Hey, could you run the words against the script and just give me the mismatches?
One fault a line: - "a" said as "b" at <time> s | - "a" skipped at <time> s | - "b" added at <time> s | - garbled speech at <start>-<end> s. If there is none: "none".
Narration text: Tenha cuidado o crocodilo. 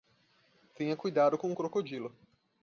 - "com" added at 1.4 s